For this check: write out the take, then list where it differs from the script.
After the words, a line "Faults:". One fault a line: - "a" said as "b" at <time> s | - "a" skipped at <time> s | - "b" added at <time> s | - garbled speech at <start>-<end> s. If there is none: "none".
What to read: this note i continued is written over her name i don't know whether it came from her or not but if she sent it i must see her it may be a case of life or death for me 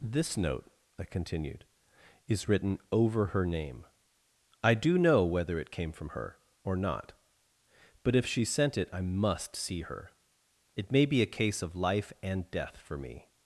this note i continued is written over her name i do know whether it came from her or not but if she sent it i must see her it may be a case of life and death for me
Faults:
- "don't" said as "do" at 4.7 s
- "or" said as "and" at 12.2 s